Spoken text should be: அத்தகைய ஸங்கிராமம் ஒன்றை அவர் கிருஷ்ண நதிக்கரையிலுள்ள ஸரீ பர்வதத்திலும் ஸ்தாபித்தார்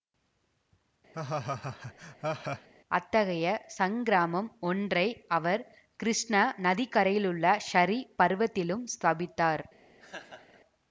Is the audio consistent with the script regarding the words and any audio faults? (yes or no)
no